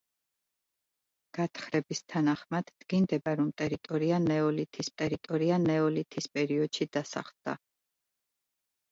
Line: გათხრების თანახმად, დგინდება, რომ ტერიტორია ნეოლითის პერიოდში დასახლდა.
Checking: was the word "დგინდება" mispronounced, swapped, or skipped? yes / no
no